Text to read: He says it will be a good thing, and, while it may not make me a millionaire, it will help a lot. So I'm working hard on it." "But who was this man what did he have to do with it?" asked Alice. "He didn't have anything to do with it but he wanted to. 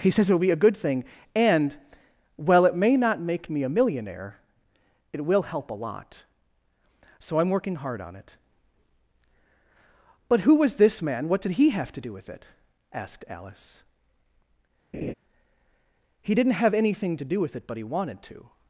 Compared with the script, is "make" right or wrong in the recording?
right